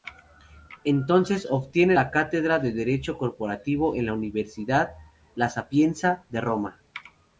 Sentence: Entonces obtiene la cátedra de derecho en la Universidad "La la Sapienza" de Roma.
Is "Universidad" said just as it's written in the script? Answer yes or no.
yes